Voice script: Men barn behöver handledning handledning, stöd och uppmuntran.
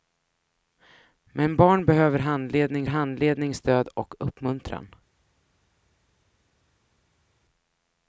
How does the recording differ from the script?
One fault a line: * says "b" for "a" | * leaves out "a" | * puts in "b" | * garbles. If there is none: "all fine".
all fine